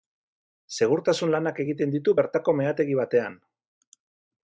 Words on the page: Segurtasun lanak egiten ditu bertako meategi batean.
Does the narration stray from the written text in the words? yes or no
no